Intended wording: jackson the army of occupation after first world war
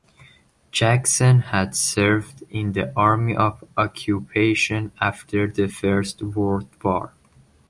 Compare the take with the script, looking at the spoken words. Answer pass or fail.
fail